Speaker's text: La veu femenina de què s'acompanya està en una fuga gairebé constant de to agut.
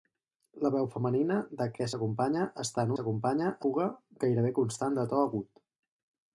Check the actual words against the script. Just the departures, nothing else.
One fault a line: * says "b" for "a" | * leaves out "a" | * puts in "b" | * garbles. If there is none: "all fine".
* says "s'acompanya" for "una"